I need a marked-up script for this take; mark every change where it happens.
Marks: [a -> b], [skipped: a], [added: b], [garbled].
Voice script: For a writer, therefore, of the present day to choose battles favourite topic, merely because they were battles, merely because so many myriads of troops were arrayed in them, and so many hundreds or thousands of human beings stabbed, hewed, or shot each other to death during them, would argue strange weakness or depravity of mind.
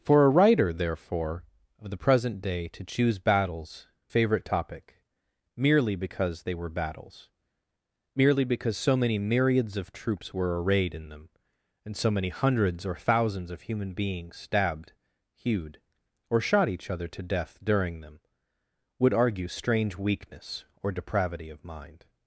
For a writer, therefore, of the present day to choose battles favourite topic, merely because they were battles, merely because so many myriads of troops were arrayed in them, and so many hundreds or thousands of human beings stabbed, hewed, or shot each other to death during them, would argue strange weakness or depravity of mind.